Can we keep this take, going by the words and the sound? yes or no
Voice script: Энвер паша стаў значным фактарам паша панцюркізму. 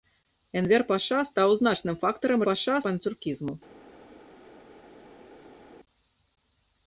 yes